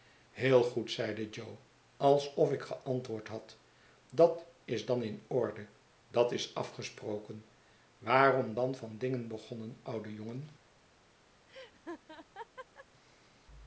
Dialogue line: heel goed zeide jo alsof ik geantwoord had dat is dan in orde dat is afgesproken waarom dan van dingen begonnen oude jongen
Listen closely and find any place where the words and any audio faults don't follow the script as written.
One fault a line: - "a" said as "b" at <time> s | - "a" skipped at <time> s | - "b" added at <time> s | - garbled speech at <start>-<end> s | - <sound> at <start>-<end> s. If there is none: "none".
- laugh at 11.5-12.9 s